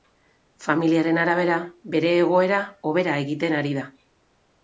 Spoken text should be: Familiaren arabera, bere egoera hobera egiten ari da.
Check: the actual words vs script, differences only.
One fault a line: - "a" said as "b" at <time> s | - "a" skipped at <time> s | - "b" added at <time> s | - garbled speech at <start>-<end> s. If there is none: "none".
none